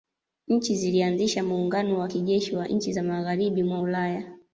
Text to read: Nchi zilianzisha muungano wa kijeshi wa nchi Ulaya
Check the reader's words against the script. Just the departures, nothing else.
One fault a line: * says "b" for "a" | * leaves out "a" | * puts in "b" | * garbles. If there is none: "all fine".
* puts in "za magharibi mwa"